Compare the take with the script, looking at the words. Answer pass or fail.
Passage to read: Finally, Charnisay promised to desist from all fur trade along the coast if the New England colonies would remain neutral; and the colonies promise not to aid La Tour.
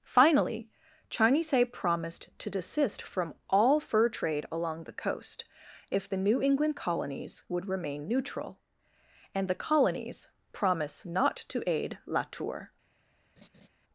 pass